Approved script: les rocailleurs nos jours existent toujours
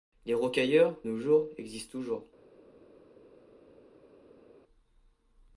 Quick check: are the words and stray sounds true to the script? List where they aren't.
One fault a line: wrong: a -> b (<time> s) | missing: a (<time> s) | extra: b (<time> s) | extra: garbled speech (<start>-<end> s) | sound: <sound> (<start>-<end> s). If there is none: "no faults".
no faults